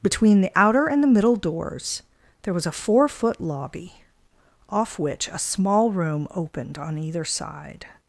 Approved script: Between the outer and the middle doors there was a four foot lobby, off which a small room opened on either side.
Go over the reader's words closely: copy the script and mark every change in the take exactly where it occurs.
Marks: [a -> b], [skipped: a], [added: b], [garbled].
Between the outer and the middle doors there was a four foot lobby, off which a small room opened on either side.